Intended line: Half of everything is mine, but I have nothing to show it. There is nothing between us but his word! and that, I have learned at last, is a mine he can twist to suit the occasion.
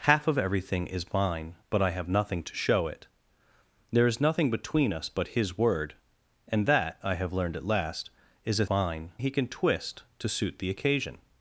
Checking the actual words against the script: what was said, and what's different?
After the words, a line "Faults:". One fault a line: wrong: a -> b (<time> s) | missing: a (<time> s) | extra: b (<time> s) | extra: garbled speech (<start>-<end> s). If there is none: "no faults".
Half of everything is mine, but I have nothing to show it. There is nothing between us but his word! and that, I have learned at last, is a mine he can twist to suit the occasion.
Faults:
no faults